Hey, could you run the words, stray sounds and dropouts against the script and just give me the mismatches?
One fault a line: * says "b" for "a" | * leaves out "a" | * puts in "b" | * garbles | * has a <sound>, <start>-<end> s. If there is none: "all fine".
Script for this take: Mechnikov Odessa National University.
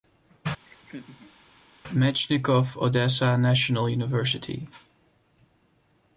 * has a laugh, 0.6-1.4 s